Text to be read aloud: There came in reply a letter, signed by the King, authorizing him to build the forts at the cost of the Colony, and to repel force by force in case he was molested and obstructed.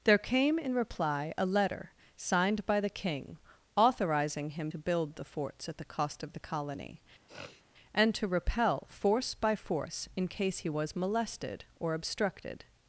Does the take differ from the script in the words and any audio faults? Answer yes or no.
yes